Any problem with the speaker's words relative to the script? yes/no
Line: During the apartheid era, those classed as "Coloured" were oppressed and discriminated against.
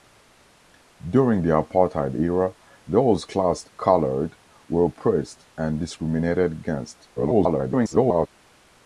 yes